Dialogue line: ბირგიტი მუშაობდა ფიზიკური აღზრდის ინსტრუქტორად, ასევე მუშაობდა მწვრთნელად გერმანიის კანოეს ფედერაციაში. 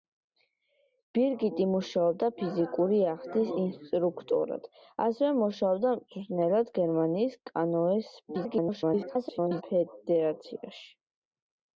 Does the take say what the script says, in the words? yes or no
no